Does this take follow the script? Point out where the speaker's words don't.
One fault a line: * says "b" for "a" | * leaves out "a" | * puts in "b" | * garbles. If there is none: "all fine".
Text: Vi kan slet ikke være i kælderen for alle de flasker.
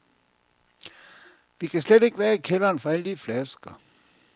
all fine